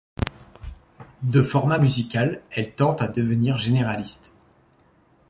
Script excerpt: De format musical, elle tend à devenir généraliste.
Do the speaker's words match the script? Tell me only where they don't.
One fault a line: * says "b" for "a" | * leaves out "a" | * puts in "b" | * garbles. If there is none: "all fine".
all fine